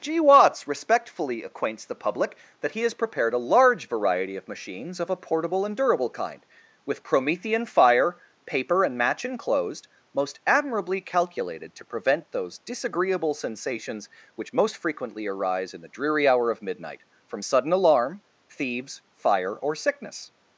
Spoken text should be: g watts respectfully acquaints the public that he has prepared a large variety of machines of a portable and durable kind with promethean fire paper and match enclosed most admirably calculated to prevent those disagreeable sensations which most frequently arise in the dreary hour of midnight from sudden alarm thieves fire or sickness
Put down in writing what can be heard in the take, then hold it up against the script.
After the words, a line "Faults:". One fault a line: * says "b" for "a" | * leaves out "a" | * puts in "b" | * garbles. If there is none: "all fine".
g watts respectfully acquaints the public that he has prepared a large variety of machines of a portable and durable kind with promethean fire paper and match enclosed most admirably calculated to prevent those disagreeable sensations which most frequently arise in the dreary hour of midnight from sudden alarm thieves fire or sickness
Faults:
all fine